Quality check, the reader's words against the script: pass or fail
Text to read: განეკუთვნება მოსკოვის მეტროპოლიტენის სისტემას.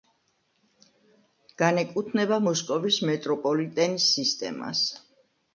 pass